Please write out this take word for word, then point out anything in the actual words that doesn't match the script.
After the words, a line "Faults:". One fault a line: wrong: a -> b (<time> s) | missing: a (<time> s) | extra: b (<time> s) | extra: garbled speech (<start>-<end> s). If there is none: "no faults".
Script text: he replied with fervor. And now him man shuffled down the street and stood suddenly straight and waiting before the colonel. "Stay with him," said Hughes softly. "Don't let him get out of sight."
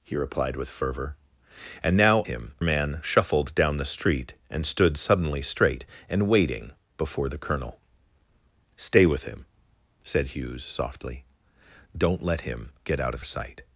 he replied with fervor. And now him man shuffled down the street and stood suddenly straight and waiting before the colonel. "Stay with him," said Hughes softly. "Don't let him get out of sight."
Faults:
no faults